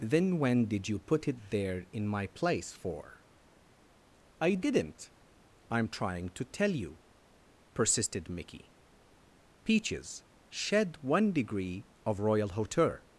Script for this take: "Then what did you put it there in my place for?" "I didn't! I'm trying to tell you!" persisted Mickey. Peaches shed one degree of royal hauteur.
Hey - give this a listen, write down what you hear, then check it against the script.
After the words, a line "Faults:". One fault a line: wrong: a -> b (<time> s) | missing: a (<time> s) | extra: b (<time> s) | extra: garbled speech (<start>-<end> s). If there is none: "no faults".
"Then when did you put it there in my place for?" "I didn't! I'm trying to tell you!" persisted Mickey. Peaches shed one degree of royal hauteur.
Faults:
wrong: what -> when (0.4 s)